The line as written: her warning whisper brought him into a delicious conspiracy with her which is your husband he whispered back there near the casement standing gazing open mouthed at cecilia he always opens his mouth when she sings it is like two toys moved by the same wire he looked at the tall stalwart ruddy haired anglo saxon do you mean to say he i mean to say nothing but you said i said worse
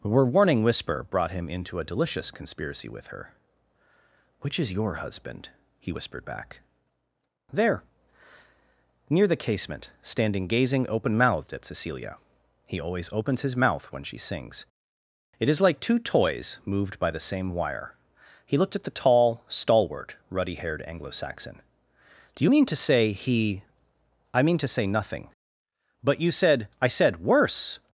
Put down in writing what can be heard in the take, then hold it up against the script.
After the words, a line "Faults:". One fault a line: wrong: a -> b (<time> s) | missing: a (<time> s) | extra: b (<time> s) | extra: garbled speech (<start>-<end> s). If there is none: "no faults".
her warning whisper brought him into a delicious conspiracy with her which is your husband he whispered back there near the casement standing gazing open mouthed at cecilia he always opens his mouth when she sings it is like two toys moved by the same wire he looked at the tall stalwart ruddy haired anglo saxon do you mean to say he i mean to say nothing but you said i said worse
Faults:
no faults